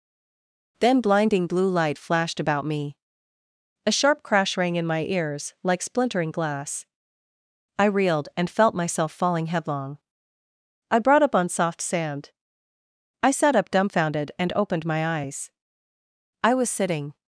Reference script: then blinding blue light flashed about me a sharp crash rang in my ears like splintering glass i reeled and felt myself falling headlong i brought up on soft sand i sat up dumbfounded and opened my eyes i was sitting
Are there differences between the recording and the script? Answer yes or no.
no